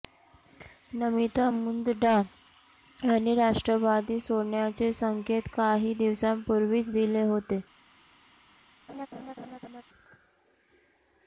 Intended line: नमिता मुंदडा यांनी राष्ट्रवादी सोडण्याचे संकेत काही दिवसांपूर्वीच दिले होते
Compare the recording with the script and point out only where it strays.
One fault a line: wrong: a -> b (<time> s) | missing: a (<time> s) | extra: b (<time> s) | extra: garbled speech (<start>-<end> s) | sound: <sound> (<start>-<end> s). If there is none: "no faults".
sound: laugh (8.9-9.8 s)